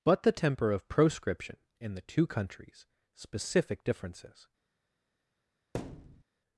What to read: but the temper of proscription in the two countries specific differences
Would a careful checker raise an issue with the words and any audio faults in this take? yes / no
yes